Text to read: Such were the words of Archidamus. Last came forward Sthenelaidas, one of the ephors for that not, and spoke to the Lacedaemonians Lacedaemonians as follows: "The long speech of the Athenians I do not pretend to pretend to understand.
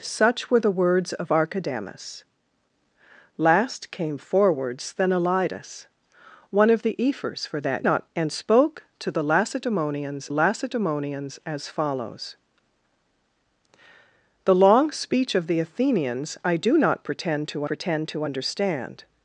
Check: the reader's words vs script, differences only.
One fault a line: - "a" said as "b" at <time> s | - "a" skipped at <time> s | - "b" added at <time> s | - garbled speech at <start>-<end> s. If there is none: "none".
none